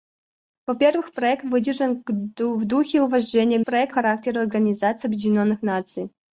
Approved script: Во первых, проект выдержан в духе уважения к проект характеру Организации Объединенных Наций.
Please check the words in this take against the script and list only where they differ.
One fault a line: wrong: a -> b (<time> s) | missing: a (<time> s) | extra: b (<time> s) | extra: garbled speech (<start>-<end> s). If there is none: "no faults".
no faults